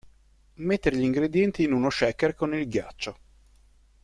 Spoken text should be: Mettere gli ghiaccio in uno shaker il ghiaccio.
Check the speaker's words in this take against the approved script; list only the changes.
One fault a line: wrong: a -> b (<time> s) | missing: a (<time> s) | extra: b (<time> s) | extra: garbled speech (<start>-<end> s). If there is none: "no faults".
wrong: ghiaccio -> ingredienti (1.0 s)
extra: con (2.3 s)